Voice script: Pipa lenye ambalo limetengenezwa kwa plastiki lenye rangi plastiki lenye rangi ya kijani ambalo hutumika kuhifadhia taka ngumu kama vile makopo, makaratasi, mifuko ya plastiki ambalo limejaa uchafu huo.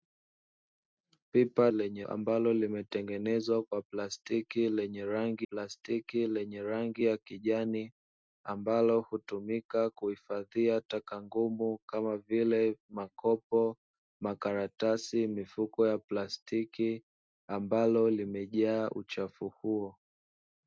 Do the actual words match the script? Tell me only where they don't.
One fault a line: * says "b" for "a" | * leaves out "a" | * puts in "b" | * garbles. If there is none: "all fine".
all fine